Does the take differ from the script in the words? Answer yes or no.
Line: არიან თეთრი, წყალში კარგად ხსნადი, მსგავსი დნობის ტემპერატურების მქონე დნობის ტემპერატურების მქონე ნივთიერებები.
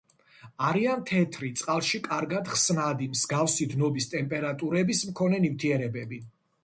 yes